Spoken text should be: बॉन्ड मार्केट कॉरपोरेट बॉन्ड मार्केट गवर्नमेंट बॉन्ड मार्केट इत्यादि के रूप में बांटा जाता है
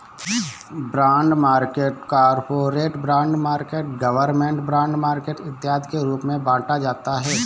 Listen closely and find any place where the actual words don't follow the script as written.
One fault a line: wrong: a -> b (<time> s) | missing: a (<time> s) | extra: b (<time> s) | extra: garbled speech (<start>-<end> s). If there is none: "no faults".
no faults